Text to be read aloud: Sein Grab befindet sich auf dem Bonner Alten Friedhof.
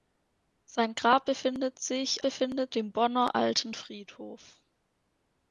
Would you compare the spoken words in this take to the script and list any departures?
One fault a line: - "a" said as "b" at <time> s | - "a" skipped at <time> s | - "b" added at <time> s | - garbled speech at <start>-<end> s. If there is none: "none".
- "auf" said as "befindet" at 2.2 s